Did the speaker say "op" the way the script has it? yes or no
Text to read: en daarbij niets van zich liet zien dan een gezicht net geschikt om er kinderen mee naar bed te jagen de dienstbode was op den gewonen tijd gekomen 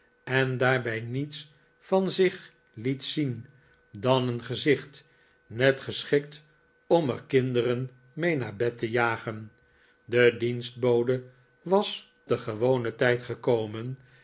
no